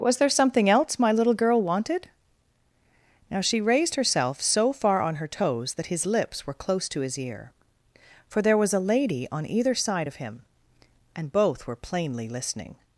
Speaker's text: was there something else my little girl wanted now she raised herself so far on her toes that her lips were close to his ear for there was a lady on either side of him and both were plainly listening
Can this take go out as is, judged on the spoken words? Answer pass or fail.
fail